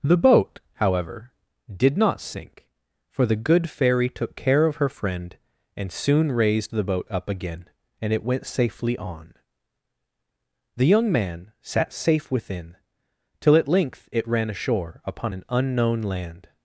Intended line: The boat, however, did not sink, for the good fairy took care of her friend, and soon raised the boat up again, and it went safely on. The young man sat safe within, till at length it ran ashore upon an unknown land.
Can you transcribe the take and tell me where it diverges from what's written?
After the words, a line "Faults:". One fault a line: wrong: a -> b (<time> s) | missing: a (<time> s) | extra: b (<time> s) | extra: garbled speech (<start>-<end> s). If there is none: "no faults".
The boat, however, did not sink, for the good fairy took care of her friend, and soon raised the boat up again, and it went safely on. The young man sat safe within, till at length it ran ashore upon an unknown land.
Faults:
no faults